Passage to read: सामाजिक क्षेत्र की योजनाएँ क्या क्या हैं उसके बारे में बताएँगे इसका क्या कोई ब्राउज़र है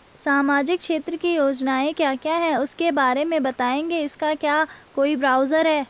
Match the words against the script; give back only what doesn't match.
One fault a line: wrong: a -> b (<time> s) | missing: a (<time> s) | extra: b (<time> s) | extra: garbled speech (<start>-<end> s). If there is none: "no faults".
no faults